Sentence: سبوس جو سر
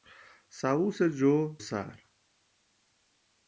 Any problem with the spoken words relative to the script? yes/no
no